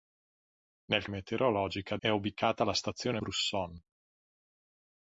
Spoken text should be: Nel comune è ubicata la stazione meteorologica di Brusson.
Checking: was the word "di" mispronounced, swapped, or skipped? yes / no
yes